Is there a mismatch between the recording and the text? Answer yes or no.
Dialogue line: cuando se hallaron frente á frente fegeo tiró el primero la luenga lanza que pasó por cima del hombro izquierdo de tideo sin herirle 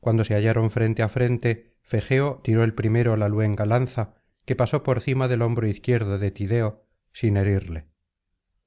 no